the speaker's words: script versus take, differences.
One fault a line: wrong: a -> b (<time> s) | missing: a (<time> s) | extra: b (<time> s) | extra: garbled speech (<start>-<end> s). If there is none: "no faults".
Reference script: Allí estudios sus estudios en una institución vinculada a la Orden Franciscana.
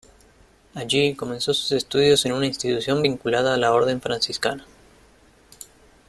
wrong: estudios -> comenzó (1.1 s)